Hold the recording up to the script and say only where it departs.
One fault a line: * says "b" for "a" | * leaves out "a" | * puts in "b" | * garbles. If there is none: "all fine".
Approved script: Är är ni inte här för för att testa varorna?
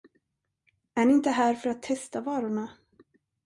* leaves out "är"
* leaves out "för"